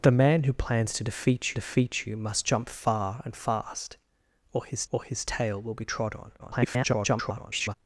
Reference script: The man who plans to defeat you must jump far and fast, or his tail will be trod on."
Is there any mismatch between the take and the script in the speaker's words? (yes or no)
yes